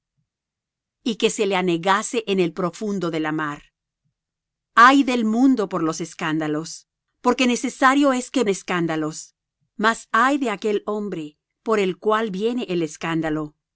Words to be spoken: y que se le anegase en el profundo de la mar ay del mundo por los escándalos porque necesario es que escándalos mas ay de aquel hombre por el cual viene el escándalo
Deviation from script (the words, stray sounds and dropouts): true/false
false